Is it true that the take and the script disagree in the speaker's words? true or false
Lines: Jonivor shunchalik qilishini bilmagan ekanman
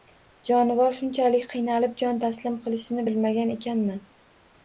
true